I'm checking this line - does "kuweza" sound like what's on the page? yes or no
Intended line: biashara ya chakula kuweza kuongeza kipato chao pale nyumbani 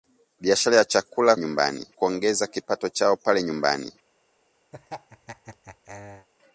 no